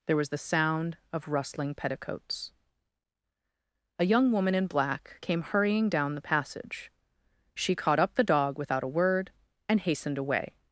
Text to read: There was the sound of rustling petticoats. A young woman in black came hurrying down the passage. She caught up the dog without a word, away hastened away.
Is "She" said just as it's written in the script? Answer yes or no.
yes